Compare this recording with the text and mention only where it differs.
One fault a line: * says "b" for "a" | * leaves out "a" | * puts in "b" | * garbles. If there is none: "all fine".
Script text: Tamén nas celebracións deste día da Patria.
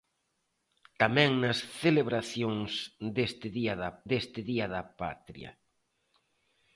* puts in "deste día da"